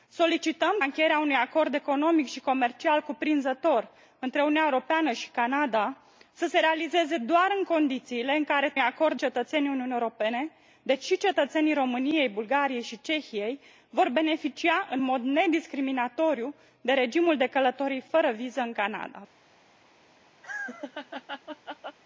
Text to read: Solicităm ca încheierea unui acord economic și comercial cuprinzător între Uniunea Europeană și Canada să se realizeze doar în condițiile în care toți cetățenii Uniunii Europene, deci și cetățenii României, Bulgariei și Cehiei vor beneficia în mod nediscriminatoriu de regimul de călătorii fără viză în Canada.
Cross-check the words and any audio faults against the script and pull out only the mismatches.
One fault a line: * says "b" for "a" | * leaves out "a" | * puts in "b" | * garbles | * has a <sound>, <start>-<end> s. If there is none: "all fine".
* leaves out "ca"
* says "acord" for "toți"
* has a laugh, 20.4-22.0 s